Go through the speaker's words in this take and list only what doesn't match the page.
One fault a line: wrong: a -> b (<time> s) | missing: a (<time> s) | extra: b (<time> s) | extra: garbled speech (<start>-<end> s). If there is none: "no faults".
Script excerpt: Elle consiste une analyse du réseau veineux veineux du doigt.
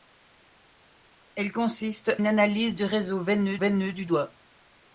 no faults